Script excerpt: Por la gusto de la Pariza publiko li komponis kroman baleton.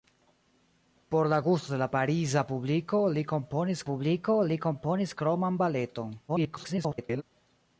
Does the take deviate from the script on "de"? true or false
false